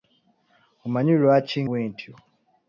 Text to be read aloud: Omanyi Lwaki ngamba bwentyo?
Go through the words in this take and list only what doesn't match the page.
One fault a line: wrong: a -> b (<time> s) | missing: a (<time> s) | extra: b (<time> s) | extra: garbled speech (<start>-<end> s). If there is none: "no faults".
missing: ngamba (1.6 s)